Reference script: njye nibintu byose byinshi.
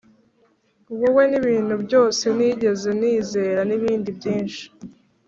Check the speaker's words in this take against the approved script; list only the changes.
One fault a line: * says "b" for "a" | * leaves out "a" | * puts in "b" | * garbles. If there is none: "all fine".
* says "wowe" for "njye"
* puts in "nigeze nizera nibindi"